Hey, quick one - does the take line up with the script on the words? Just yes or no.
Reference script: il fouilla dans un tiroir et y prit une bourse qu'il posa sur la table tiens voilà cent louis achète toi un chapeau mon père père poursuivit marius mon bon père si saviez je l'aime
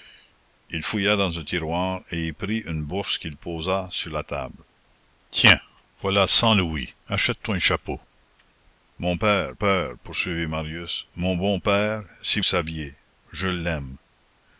yes